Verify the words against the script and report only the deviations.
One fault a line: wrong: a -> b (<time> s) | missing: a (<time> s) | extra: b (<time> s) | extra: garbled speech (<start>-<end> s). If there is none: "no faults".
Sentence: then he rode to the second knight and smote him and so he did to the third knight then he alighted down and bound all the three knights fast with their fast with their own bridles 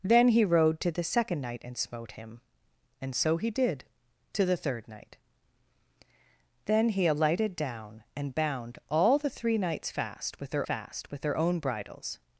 no faults